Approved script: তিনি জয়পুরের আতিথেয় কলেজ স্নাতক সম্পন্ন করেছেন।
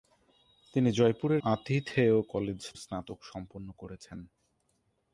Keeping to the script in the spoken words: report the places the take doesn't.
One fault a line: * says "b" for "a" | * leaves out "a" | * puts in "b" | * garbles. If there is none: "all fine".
all fine